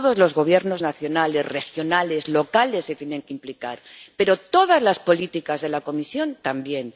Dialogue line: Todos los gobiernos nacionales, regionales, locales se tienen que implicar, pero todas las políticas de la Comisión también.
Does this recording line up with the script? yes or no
yes